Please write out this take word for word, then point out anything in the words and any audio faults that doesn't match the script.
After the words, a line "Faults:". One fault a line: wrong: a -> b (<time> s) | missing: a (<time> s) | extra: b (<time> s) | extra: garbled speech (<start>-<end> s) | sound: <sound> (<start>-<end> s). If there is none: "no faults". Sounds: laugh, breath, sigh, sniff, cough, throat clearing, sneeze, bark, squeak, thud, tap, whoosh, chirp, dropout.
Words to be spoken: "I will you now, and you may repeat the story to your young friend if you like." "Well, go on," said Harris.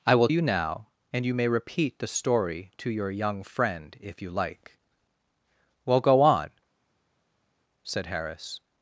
"I will you now, and you may repeat the story to your young friend if you like." "Well, go on," said Harris.
Faults:
no faults